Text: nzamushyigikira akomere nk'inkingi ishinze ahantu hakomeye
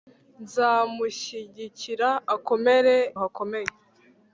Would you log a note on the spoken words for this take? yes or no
yes